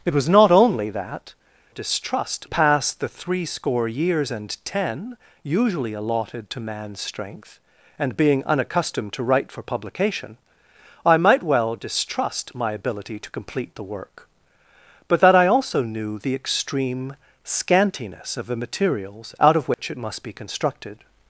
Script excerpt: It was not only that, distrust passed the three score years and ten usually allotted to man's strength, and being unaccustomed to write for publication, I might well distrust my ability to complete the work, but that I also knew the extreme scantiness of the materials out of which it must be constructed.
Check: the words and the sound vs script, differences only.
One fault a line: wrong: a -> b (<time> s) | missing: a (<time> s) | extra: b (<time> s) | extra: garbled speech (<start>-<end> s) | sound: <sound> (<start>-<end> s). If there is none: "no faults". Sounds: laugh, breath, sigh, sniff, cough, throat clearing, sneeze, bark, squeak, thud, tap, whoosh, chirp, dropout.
sound: dropout (19.7-19.8 s)